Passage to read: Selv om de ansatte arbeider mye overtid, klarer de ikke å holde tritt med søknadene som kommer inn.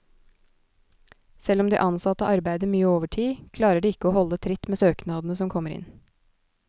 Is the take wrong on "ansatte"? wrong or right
right